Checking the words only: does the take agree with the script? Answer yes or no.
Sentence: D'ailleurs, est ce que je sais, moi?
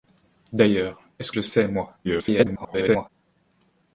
no